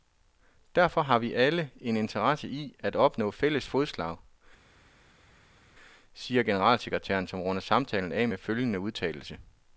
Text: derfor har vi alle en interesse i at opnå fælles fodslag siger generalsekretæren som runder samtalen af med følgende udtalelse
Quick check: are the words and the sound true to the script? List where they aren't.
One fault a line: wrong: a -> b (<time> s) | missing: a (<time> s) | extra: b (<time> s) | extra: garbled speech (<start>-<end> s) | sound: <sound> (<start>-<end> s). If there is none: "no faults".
no faults